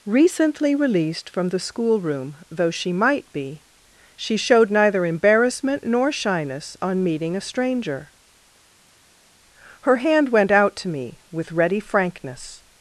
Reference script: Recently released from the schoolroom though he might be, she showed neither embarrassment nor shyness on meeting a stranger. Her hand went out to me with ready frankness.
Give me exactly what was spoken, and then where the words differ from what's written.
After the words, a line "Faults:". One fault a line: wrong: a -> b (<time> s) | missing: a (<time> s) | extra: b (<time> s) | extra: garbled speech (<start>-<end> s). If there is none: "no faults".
Recently released from the schoolroom though she might be, she showed neither embarrassment nor shyness on meeting a stranger. Her hand went out to me with ready frankness.
Faults:
wrong: he -> she (2.7 s)